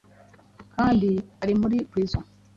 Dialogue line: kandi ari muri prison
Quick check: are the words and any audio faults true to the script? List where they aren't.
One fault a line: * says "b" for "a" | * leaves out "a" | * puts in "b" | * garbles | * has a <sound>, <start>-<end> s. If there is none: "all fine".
all fine